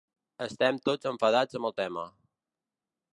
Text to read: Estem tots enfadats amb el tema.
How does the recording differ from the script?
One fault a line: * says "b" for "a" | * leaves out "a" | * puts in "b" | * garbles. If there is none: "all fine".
all fine